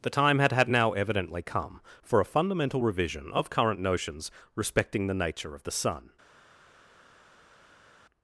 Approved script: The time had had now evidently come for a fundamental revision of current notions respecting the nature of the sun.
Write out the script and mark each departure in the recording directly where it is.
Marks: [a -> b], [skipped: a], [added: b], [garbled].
The time had had now evidently come for a fundamental revision of current notions respecting the nature of the sun.